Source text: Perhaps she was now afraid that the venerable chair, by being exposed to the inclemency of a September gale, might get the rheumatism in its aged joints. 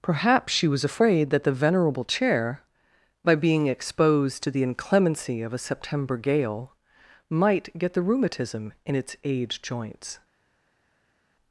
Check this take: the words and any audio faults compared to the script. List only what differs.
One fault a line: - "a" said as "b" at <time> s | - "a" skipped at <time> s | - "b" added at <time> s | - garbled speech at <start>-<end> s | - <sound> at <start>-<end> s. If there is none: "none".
- "now" skipped at 0.8 s